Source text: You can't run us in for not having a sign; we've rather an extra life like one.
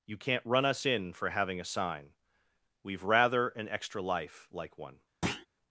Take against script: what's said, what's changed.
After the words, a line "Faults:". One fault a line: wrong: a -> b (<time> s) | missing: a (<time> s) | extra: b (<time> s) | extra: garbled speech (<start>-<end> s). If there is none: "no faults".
You can't run us in for having a sign; we've rather an extra life like one.
Faults:
missing: not (1.3 s)